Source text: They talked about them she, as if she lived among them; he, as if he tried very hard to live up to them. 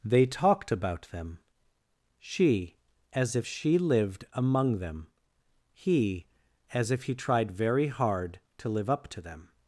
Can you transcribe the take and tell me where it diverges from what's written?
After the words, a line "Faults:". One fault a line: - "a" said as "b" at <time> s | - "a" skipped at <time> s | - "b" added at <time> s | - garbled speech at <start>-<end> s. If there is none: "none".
They talked about them she, as if she lived among them; he, as if he tried very hard to live up to them.
Faults:
none